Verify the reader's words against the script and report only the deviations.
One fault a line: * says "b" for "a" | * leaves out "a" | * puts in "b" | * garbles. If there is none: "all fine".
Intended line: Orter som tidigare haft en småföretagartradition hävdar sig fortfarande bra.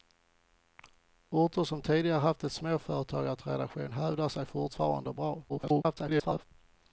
* garbles